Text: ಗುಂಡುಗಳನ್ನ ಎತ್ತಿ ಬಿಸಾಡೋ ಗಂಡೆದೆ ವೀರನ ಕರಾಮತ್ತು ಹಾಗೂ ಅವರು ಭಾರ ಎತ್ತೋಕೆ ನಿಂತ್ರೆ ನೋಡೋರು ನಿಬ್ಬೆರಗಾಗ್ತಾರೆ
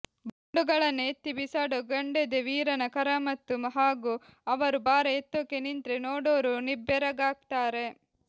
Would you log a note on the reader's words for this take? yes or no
no